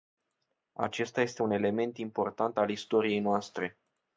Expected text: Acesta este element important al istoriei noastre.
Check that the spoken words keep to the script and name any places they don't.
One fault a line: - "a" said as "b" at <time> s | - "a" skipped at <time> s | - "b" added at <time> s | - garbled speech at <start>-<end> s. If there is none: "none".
- "un" added at 1.4 s